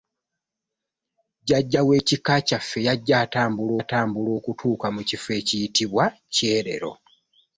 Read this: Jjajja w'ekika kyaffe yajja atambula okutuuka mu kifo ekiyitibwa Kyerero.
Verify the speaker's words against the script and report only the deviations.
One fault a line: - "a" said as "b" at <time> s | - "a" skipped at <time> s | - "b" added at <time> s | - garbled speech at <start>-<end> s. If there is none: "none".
- "atambula" added at 3.8 s